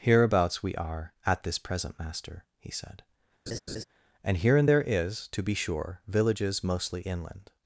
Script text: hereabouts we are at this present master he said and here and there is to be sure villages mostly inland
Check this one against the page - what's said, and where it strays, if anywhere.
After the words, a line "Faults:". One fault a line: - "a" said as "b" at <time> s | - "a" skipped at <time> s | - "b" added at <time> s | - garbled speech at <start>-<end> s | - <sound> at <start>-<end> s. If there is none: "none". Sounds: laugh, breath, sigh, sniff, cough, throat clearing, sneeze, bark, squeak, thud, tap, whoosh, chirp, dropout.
hereabouts we are at this present master he said and here and there is to be sure villages mostly inland
Faults:
- laugh at 3.5-3.8 s